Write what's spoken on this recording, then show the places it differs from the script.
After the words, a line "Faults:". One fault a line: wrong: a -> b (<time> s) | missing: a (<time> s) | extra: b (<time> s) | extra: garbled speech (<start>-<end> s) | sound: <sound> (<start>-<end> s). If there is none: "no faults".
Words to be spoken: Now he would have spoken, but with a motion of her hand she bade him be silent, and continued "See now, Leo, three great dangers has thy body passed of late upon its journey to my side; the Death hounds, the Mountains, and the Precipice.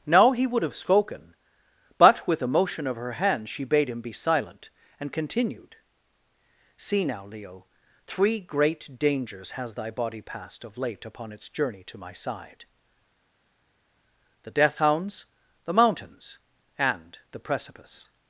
Now he would have spoken, but with a motion of her hand she bade him be silent, and continued "See now, Leo, three great dangers has thy body passed of late upon its journey to my side; the Death hounds, the Mountains, and the Precipice.
Faults:
no faults